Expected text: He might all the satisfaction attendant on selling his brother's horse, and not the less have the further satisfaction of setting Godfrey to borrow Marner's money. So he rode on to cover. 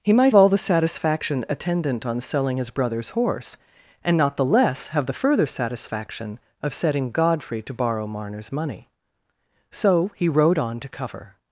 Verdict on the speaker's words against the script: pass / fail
pass